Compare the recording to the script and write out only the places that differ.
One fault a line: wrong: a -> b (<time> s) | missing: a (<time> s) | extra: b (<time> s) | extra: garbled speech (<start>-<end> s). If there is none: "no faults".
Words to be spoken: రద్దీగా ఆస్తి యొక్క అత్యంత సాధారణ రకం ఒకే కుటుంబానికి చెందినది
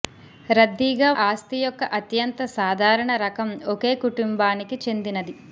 no faults